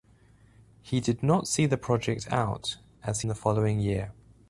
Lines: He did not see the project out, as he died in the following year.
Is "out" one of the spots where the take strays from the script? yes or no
no